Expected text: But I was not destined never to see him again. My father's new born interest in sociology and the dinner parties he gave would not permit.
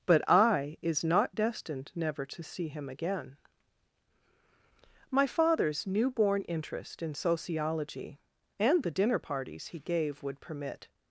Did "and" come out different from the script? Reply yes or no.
no